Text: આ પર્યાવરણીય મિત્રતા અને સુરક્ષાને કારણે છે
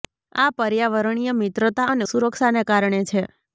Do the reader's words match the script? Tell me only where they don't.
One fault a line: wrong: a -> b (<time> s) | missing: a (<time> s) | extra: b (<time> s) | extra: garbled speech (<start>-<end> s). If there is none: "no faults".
no faults